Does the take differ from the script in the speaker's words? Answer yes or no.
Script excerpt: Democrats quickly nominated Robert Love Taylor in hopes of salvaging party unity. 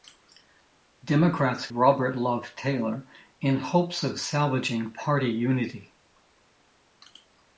yes